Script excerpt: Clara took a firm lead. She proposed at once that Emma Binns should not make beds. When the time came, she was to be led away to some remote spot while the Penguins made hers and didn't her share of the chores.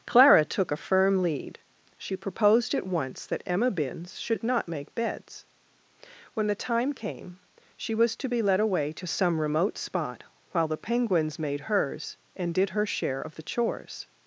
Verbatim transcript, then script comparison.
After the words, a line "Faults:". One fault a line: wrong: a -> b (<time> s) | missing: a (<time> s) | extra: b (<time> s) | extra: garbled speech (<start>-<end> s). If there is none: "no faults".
Clara took a firm lead. She proposed at once that Emma Binns should not make beds. When the time came, she was to be led away to some remote spot while the Penguins made hers and did her share of the chores.
Faults:
wrong: didn't -> did (12.5 s)